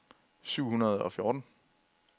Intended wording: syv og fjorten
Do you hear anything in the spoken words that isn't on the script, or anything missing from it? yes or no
yes